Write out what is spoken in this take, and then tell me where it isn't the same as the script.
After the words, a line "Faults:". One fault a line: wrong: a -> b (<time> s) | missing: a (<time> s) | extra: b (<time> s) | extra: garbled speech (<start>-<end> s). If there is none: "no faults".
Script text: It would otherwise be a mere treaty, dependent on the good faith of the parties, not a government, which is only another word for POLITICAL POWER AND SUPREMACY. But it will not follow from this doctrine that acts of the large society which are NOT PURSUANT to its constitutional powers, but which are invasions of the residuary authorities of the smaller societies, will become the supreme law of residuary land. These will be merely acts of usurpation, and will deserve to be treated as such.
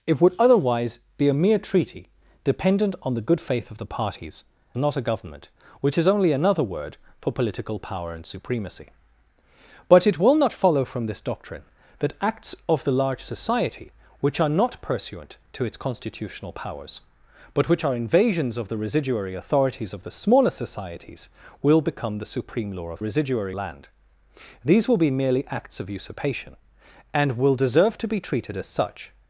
It would otherwise be a mere treaty, dependent on the good faith of the parties, not a government, which is only another word for POLITICAL POWER AND SUPREMACY. But it will not follow from this doctrine that acts of the large society which are NOT PURSUANT to its constitutional powers, but which are invasions of the residuary authorities of the smaller societies, will become the supreme law of residuary land. These will be merely acts of usurpation, and will deserve to be treated as such.
Faults:
no faults